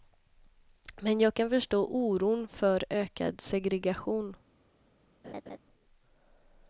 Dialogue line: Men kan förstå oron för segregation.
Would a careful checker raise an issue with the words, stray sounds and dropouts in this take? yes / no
yes